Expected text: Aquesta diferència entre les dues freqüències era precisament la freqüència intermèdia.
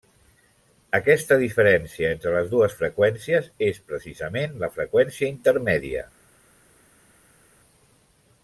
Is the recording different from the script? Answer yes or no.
yes